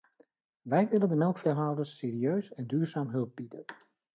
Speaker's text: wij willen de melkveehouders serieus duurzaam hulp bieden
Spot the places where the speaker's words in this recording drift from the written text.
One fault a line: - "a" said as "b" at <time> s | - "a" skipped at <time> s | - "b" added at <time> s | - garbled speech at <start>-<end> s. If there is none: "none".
- "en" added at 2.5 s